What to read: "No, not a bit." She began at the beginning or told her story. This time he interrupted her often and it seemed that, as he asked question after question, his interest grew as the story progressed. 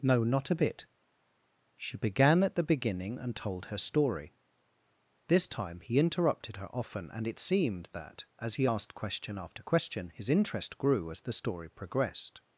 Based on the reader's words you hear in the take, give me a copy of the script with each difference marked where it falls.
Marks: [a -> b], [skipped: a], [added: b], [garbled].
"No, not a bit." She began at the beginning [or -> and] told her story. This time he interrupted her often and it seemed that, as he asked question after question, his interest grew as the story progressed.